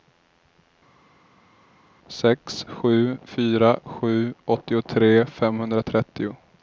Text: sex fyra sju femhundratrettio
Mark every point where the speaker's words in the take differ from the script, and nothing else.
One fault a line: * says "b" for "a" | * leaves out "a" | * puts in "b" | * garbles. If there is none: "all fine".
* puts in "sju"
* puts in "åttiotre"